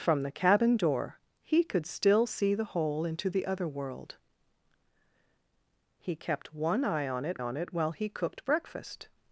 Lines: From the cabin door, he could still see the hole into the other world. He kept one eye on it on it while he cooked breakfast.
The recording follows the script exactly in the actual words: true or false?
true